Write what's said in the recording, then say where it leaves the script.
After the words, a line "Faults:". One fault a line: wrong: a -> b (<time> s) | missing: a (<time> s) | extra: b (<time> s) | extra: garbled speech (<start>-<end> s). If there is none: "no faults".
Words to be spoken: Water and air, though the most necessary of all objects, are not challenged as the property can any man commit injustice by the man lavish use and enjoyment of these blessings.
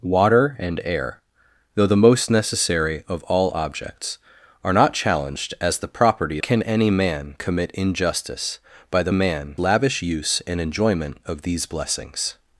Water and air, though the most necessary of all objects, are not challenged as the property can any man commit injustice by the man lavish use and enjoyment of these blessings.
Faults:
no faults